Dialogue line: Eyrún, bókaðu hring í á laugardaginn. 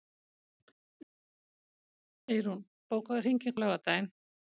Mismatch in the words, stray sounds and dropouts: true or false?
false